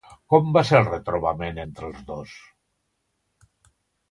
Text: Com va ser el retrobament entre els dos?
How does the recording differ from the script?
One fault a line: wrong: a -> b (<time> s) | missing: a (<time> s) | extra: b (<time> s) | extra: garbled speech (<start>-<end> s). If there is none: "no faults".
no faults